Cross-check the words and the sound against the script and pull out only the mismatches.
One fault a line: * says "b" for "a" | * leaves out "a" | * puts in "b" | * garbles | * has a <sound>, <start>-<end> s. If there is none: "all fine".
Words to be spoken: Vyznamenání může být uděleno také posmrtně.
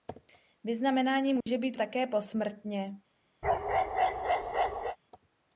* has a dropout, 1.4-1.5 s
* leaves out "uděleno"
* has a bark, 3.4-5.0 s